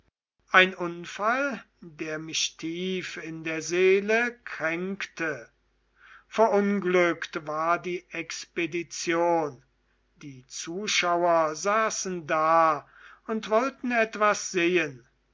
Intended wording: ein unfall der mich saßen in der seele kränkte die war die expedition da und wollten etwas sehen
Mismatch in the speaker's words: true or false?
true